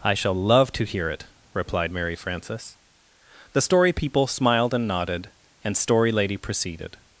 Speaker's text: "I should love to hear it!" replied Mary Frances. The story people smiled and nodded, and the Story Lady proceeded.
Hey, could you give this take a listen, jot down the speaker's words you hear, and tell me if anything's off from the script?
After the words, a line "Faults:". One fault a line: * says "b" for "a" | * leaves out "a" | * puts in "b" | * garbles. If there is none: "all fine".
"I shall love to hear it!" replied Mary Frances. The story people smiled and nodded, and Story Lady proceeded.
Faults:
* says "shall" for "should"
* leaves out "the"